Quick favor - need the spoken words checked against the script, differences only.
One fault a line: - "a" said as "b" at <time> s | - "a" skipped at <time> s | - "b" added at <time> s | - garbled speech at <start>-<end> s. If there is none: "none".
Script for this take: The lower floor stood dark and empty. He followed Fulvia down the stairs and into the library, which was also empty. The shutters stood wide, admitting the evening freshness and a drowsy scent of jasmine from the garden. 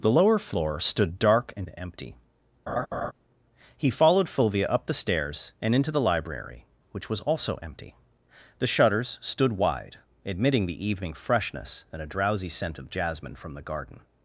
- "down" said as "up" at 4.7 s